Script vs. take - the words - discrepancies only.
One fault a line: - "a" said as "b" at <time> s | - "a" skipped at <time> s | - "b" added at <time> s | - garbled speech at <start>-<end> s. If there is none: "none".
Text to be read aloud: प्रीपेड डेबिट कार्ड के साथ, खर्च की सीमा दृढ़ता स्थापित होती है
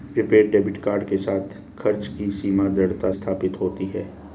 none